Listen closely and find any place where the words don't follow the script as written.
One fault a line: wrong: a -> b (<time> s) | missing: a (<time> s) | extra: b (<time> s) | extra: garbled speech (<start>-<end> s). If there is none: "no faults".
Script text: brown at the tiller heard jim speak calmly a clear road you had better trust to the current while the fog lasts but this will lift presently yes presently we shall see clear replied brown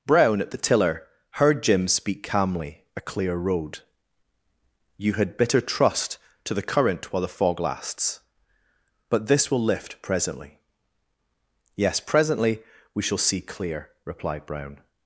wrong: better -> bitter (5.4 s)